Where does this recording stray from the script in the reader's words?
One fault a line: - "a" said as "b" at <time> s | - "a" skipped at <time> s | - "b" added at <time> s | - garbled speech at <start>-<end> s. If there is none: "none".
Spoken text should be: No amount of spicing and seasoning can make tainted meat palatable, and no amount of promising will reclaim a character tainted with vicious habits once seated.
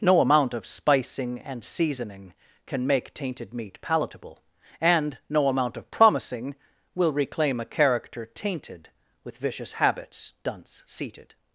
- "once" said as "dunce" at 10.4 s